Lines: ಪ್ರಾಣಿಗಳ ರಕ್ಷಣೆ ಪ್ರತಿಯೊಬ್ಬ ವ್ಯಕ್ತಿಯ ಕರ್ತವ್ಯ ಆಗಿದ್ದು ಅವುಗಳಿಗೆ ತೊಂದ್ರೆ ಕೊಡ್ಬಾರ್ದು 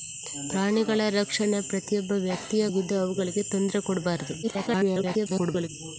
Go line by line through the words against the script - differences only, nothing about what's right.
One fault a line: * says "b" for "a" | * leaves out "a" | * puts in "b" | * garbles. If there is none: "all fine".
* leaves out "ಕರ್ತವ್ಯ"
* garbles